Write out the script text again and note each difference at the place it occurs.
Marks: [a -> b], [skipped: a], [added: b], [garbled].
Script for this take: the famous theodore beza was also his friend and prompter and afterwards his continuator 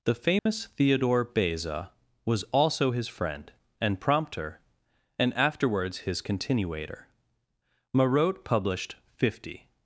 the famous theodore beza was also his friend and prompter and afterwards his continuator [added: marot published fifty]